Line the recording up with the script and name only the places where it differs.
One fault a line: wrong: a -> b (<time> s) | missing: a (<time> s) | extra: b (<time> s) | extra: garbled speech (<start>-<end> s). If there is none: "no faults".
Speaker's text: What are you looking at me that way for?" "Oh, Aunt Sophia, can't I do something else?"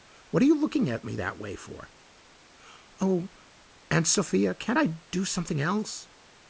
no faults